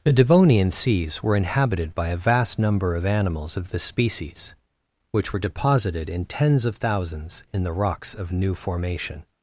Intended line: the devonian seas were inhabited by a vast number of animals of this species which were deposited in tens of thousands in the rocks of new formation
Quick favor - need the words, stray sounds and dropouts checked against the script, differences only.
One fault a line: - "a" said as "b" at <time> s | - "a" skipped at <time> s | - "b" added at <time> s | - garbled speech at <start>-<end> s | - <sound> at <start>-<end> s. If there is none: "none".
none